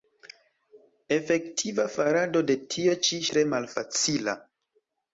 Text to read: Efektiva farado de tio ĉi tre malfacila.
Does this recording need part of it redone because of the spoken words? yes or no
no